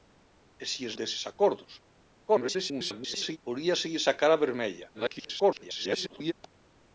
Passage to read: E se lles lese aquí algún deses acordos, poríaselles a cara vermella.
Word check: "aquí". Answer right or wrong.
wrong